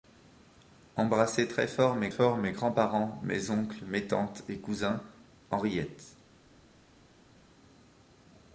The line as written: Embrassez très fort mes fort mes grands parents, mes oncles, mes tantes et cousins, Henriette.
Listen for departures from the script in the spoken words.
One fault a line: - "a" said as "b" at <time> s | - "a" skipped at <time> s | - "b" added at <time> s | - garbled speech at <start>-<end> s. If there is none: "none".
none